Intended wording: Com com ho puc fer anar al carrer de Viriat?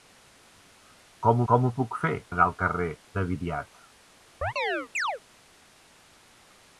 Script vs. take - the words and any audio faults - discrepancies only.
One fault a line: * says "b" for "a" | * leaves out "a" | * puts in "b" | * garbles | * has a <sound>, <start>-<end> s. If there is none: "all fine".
* has a chirp, 4.4-5.2 s